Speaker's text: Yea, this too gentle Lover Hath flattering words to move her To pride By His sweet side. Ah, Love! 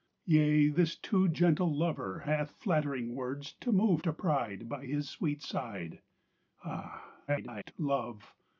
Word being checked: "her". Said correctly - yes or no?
no